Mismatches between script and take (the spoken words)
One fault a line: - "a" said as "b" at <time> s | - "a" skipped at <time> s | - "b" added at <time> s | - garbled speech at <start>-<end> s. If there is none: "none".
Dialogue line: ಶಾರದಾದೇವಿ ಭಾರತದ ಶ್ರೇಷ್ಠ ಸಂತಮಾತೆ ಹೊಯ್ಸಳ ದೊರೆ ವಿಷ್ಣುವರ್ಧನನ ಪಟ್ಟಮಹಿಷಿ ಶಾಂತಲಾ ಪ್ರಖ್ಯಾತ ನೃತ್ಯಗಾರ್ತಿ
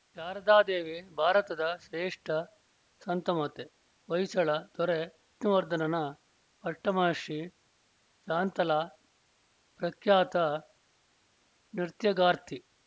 none